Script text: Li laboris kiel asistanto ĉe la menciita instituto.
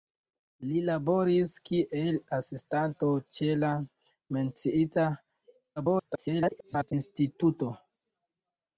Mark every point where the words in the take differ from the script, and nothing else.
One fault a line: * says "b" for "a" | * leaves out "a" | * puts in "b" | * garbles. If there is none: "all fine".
* garbles